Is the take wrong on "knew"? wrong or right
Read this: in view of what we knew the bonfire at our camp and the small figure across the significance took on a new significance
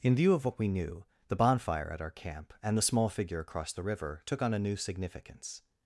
right